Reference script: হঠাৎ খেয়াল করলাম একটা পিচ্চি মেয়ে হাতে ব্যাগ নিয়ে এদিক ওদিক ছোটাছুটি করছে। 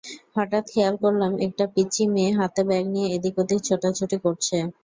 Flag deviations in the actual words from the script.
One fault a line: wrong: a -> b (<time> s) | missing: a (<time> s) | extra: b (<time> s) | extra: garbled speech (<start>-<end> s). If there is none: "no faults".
no faults